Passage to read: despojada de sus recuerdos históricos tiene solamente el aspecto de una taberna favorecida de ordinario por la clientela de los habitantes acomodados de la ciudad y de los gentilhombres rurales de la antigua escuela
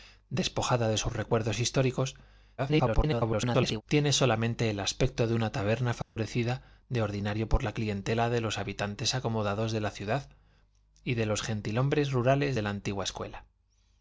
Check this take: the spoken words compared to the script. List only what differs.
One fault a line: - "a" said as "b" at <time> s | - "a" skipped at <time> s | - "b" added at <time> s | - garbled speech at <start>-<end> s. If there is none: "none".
- garbled speech at 2.6-3.8 s